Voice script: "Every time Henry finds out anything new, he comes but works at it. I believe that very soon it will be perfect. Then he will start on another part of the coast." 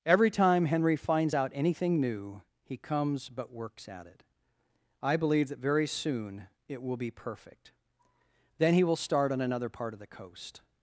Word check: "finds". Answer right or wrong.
right